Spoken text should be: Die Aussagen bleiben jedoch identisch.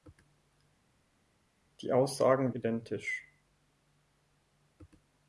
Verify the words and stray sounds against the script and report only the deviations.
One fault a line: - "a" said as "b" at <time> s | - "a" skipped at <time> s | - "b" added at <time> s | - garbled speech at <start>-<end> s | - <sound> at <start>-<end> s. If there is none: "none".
- "bleiben jedoch" skipped at 2.5 s